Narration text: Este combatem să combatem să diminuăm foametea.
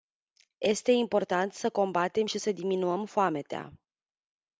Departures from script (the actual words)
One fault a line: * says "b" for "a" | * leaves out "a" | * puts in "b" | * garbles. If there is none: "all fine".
* says "important" for "combatem"
* puts in "și"